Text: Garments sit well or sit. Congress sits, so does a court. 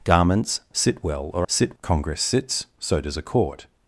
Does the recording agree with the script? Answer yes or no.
yes